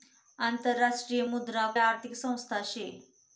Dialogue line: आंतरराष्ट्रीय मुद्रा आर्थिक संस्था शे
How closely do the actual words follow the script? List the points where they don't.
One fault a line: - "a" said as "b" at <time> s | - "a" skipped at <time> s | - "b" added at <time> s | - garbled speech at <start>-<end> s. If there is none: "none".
none